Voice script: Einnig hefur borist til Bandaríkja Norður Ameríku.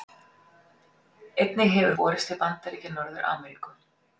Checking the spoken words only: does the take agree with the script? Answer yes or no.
yes